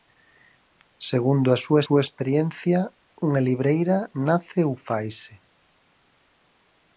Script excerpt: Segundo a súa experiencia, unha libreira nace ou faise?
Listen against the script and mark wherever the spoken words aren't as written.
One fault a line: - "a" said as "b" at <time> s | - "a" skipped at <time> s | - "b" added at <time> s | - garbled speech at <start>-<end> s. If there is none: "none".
- "súa" added at 1.8 s